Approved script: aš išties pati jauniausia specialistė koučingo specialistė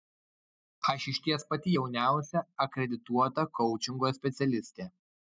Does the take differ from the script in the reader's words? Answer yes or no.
yes